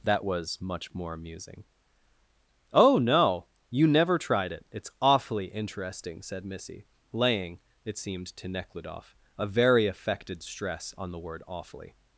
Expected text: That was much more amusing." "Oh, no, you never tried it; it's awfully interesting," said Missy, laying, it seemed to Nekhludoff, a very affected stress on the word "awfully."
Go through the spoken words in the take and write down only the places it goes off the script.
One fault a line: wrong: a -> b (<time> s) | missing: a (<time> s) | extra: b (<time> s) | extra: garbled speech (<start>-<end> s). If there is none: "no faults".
no faults